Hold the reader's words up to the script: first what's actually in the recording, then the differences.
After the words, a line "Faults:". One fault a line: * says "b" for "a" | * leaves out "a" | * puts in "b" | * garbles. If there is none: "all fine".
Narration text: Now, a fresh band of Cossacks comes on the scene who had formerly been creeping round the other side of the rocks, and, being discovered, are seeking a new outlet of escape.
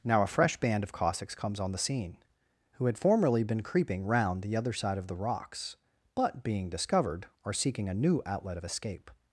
Now, a fresh band of Cossacks comes on the scene who had formerly been creeping round the other side of the rocks, but, being discovered, are seeking a new outlet of escape.
Faults:
* says "but" for "and"